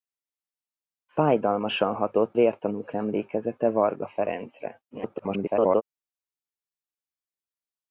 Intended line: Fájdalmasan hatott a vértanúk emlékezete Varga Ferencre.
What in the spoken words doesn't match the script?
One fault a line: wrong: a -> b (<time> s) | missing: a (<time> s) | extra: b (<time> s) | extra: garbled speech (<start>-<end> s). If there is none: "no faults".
missing: a (2.4 s)
extra: garbled speech (4.9-5.8 s)